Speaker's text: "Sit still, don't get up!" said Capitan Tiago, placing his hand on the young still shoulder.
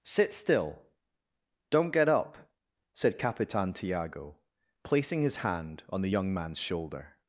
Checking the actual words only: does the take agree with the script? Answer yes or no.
no